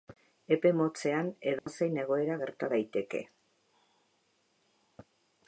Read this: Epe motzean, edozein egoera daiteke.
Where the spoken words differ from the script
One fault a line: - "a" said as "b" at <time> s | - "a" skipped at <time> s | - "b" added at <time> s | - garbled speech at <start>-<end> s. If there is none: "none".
- "gerta" added at 2.4 s